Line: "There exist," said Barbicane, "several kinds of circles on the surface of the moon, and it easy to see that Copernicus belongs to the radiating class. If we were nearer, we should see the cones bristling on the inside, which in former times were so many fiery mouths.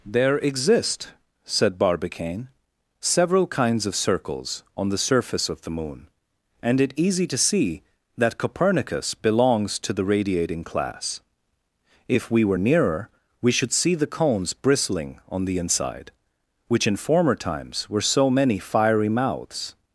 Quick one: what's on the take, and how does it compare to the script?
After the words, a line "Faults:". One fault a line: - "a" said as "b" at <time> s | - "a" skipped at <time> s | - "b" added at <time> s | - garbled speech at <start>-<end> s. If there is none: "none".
"There exist," said Barbicane, "several kinds of circles on the surface of the moon, and it easy to see that Copernicus belongs to the radiating class. If we were nearer, we should see the cones bristling on the inside, which in former times were so many fiery mouths.
Faults:
none